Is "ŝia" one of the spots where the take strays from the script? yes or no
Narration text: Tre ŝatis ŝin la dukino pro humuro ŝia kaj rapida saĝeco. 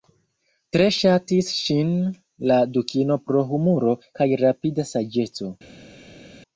yes